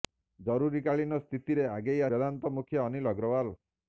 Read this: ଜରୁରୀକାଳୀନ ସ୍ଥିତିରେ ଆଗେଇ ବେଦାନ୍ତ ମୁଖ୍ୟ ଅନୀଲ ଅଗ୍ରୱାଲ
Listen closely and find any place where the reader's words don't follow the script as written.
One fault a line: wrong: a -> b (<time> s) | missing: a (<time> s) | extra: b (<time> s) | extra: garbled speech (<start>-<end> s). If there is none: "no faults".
no faults